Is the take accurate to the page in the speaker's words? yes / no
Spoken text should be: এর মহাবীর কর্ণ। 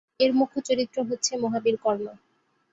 no